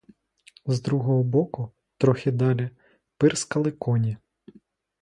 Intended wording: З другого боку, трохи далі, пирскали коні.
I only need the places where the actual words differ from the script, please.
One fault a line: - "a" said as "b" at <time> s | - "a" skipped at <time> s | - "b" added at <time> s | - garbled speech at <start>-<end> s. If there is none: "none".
none